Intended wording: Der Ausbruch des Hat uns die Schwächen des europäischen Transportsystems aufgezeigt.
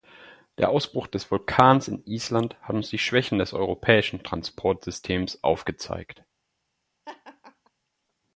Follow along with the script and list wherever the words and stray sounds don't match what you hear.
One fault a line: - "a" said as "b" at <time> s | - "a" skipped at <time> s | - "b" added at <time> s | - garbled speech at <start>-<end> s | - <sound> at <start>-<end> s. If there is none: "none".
- "Vulkans in Island" added at 1.3 s
- laugh at 7.0-7.7 s